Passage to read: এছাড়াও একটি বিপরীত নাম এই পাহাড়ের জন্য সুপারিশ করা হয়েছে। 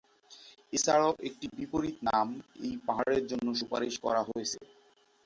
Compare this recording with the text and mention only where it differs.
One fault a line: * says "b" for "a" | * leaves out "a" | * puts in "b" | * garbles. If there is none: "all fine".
all fine